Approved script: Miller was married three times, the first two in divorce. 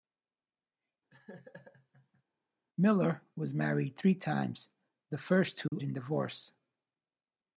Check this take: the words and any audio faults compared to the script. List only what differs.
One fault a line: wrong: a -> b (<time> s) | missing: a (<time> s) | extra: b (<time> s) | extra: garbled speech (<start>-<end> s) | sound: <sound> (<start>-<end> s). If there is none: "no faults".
sound: laugh (1.1-2.2 s)
sound: dropout (5.7-5.7 s)